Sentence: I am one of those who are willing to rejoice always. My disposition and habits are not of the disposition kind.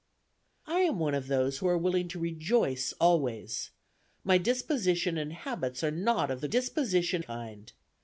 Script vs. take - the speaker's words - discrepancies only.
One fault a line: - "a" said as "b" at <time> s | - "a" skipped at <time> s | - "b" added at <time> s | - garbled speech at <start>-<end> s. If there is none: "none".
none